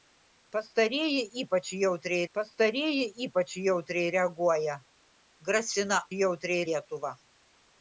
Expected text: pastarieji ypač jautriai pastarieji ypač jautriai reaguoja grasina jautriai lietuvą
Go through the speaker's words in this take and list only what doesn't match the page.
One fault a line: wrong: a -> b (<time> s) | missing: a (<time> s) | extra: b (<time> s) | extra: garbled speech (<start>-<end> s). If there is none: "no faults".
no faults